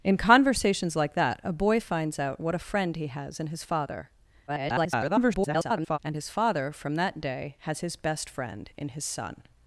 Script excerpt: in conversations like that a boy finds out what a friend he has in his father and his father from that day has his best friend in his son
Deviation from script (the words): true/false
true